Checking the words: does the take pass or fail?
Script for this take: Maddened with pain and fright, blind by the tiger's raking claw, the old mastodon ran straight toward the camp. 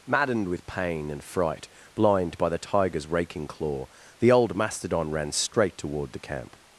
pass